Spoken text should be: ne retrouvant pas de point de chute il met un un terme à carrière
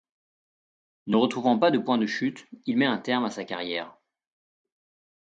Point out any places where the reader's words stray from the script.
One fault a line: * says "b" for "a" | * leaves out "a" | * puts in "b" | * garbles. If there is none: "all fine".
* leaves out "un"
* puts in "sa"